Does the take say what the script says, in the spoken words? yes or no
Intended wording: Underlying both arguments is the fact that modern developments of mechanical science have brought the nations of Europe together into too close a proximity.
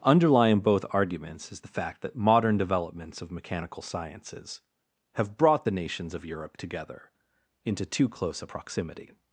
no